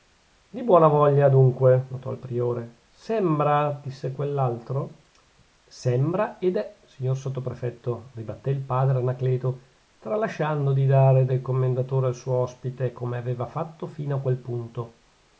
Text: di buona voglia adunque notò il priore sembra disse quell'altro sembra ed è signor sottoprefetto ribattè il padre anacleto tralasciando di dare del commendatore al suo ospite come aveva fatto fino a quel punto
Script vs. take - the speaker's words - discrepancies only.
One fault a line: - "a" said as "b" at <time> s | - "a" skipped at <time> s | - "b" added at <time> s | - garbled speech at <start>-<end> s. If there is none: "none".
none